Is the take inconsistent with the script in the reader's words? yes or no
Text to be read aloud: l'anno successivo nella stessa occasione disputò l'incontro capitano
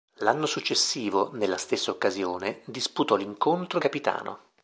no